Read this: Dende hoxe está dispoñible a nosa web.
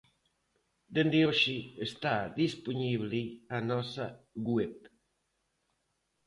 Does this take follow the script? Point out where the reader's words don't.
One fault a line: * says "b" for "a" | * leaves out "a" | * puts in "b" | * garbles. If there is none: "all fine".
all fine